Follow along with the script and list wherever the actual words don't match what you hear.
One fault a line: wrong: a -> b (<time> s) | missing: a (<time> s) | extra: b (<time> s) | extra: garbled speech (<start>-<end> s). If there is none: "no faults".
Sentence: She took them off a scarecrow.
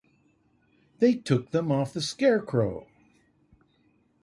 wrong: She -> They (1.0 s)
wrong: a -> the (1.9 s)